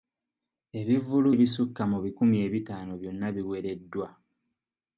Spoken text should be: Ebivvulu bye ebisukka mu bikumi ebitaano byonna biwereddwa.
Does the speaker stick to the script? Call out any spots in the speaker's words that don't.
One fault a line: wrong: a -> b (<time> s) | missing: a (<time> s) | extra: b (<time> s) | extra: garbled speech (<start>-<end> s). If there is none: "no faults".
missing: bye (1.3 s)